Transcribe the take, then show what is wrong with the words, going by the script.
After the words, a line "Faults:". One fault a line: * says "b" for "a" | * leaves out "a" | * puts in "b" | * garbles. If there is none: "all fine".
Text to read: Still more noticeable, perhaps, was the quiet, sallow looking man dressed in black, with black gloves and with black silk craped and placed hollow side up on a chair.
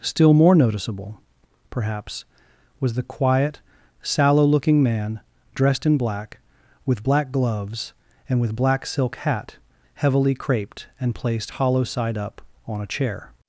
Still more noticeable, perhaps, was the quiet, sallow looking man dressed in black, with black gloves and with black silk hat heavily craped and placed hollow side up on a chair.
Faults:
* puts in "hat heavily"